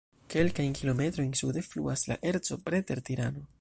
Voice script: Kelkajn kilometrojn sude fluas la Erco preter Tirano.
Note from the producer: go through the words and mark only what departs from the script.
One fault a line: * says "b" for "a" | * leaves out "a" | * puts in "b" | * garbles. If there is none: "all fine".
all fine